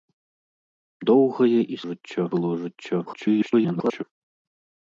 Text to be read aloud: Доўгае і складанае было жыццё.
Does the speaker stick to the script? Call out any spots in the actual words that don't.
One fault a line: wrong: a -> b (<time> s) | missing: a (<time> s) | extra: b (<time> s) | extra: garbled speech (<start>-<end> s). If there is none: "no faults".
wrong: складанае -> жыццё (1.9 s)
extra: garbled speech (3.1-4.0 s)